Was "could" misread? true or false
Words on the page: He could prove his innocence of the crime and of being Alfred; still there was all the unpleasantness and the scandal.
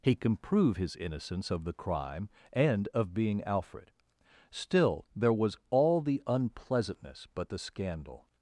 true